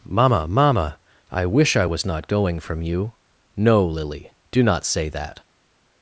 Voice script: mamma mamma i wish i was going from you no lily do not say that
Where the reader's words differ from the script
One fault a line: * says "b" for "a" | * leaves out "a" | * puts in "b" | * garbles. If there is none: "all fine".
* puts in "not"